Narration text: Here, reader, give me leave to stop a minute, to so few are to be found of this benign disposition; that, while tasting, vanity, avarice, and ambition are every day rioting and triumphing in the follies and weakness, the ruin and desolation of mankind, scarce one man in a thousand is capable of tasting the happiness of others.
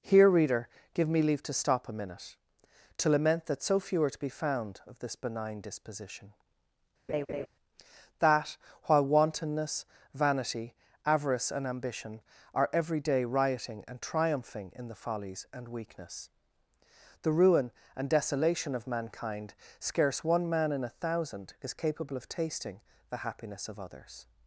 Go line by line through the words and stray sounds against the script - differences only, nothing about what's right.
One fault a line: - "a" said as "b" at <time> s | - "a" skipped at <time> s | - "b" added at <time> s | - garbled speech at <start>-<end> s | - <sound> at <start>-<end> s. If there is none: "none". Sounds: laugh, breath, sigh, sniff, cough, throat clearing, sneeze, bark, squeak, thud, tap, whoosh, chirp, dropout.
- "lament that" added at 3.1 s
- laugh at 7.1-7.5 s
- "tasting" said as "wantonness" at 9.0 s